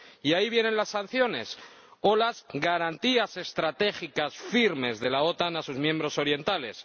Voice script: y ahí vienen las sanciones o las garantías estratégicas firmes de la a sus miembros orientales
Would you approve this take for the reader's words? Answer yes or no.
no